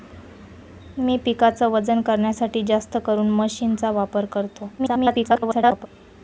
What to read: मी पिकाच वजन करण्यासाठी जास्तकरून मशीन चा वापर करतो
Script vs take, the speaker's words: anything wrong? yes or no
yes